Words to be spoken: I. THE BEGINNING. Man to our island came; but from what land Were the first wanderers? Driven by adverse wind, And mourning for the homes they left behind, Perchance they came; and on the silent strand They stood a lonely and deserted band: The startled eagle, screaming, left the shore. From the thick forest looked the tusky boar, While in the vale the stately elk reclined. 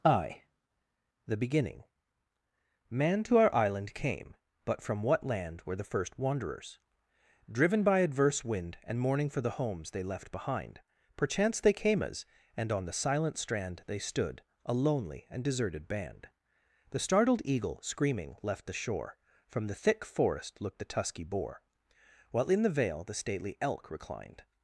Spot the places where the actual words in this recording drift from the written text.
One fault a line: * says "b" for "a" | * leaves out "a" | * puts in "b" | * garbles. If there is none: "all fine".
* puts in "as"